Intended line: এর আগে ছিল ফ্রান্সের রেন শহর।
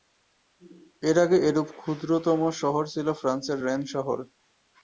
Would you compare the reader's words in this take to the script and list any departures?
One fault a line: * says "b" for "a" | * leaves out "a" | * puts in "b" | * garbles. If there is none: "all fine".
* puts in "এরূপ ক্ষুদ্রতম শহর"